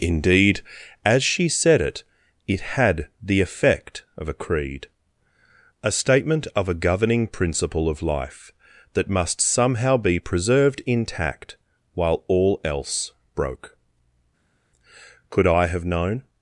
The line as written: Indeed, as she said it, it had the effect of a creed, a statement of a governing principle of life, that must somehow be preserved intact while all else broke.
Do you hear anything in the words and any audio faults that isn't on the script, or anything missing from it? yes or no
yes